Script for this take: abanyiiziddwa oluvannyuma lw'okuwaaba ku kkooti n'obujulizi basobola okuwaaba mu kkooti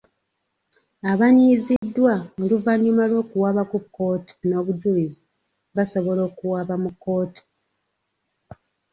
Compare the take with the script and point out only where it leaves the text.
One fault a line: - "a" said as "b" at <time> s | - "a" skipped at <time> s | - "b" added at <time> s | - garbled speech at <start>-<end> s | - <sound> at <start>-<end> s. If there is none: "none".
- dropout at 1.8-1.8 s